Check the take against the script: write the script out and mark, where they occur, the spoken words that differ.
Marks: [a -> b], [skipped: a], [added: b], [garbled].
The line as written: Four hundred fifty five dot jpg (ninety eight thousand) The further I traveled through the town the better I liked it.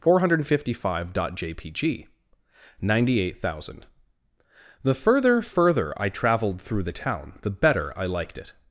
Four hundred fifty five dot jpg (ninety eight thousand) The further [added: further] I traveled through the town the better I liked it.